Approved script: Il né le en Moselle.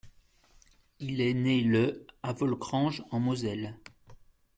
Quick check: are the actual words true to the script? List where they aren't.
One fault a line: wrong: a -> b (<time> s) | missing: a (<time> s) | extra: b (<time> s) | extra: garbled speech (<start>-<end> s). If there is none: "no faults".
extra: est (1.2 s)
extra: à Volkrange (2.2 s)